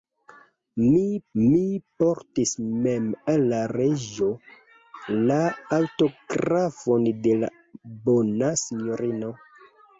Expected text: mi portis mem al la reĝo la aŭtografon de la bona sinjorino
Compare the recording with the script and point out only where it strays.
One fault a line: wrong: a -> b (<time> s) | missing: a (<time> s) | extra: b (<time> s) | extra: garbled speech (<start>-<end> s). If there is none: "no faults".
extra: mi (1.4 s)